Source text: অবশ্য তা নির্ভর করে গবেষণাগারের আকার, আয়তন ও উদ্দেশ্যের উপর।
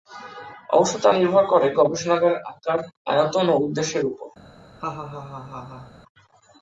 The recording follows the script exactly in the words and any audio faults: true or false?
false